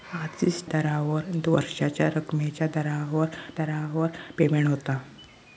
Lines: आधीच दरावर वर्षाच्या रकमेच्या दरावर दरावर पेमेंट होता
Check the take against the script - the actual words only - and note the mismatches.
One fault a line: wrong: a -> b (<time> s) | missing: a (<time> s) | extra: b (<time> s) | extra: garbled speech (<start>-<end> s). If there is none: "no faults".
no faults